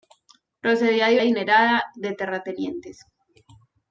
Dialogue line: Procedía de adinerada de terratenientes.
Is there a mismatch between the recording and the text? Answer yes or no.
no